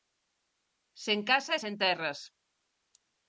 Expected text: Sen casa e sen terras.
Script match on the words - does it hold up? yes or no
yes